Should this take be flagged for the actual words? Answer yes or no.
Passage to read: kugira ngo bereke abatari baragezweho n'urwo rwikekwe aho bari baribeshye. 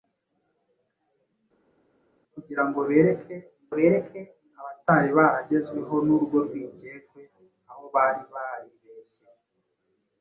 yes